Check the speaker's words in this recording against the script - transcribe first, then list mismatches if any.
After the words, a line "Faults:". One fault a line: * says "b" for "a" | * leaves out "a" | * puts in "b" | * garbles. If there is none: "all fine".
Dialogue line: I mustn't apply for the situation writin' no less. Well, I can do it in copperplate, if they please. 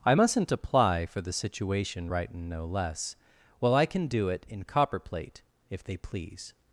I mustn't apply for the situation writin' no less. Well, I can do it in copperplate, if they please.
Faults:
all fine